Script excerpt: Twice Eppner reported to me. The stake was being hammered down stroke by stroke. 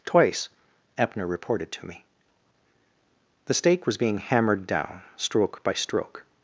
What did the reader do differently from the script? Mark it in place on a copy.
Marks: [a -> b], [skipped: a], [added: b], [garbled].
Twice Eppner reported to me. The stake was being hammered down stroke by stroke.